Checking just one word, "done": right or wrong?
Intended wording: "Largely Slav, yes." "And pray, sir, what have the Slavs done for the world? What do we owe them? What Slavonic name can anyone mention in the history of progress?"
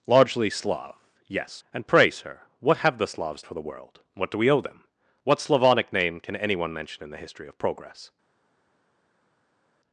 wrong